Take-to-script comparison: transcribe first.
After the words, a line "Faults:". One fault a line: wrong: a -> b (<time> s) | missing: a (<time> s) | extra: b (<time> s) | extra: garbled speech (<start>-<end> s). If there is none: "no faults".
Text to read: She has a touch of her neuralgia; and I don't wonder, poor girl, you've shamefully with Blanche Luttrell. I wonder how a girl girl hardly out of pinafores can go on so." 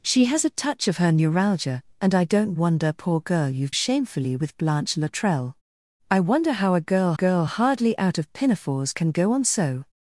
She has a touch of her neuralgia; and I don't wonder, poor girl, you've shamefully with Blanche Luttrell. I wonder how a girl girl hardly out of pinafores can go on so."
Faults:
no faults